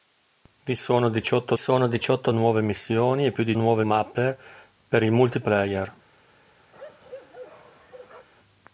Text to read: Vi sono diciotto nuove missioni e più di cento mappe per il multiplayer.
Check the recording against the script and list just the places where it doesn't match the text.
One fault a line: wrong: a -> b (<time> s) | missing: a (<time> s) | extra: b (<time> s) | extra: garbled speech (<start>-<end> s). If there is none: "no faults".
extra: sono diciotto (1.5 s)
wrong: cento -> nuove (3.5 s)